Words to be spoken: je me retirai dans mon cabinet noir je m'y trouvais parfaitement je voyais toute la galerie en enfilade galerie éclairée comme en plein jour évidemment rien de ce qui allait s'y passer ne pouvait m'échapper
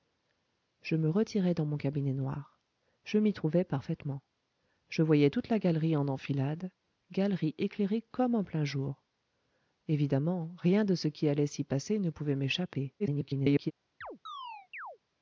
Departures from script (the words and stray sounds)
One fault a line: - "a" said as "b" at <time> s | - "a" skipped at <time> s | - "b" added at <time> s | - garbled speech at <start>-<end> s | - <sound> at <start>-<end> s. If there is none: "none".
- garbled speech at 13.0-13.7 s
- chirp at 14.0-15.0 s